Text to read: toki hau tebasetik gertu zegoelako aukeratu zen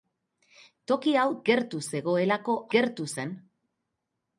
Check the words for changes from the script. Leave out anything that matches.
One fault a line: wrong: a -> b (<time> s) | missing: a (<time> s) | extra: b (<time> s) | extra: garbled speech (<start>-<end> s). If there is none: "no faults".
missing: tebasetik (1.2 s)
wrong: aukeratu -> gertu (2.7 s)